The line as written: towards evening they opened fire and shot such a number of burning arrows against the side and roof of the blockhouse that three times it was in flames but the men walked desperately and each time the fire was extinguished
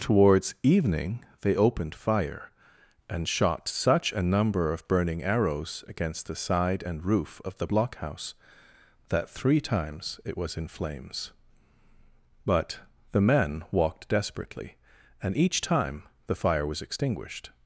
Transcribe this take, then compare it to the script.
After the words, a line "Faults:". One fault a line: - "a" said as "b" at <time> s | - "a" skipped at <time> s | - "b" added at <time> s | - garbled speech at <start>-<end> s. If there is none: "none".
towards evening they opened fire and shot such a number of burning arrows against the side and roof of the blockhouse that three times it was in flames but the men walked desperately and each time the fire was extinguished
Faults:
none